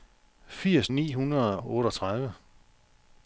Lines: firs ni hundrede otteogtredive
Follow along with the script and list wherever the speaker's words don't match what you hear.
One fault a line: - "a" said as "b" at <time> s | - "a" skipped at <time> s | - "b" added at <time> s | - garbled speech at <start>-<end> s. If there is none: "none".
none